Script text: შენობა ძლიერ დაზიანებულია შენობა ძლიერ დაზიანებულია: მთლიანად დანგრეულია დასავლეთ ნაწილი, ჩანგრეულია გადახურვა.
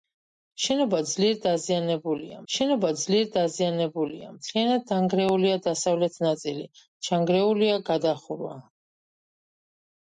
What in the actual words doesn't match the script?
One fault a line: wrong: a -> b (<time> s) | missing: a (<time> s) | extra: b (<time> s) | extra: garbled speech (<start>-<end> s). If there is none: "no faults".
no faults